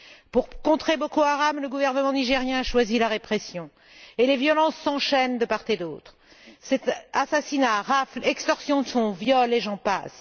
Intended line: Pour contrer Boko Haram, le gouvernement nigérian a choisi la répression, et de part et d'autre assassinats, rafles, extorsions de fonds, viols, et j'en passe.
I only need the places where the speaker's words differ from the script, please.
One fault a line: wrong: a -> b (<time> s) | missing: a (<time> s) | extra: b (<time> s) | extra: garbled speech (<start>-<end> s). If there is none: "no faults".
extra: les violences s'enchaînent (4.3 s)